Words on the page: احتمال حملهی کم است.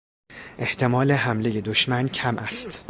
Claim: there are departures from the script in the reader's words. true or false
true